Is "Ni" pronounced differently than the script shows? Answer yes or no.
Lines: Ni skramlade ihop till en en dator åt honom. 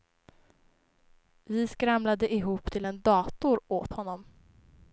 yes